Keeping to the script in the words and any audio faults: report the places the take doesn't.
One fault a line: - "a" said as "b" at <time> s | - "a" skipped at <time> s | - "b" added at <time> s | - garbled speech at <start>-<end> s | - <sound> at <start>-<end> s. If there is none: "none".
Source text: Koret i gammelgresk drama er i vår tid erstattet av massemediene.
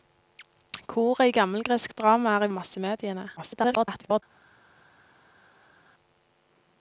- "vår tid erstattet" skipped at 2.5 s
- garbled speech at 3.4-4.2 s